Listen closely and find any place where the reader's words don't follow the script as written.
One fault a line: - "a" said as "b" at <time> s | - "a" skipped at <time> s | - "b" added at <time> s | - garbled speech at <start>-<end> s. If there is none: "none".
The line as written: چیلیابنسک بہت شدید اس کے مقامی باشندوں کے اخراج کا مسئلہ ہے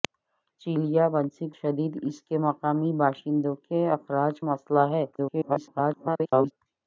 - "بہت" skipped at 1.5 s
- "کا" skipped at 4.4 s
- garbled speech at 5.1-6.5 s